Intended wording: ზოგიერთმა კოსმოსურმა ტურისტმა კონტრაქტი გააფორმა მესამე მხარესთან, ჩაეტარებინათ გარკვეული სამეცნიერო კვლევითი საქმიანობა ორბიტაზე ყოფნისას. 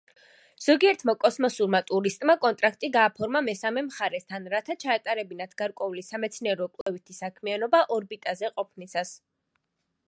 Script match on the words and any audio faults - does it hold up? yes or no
no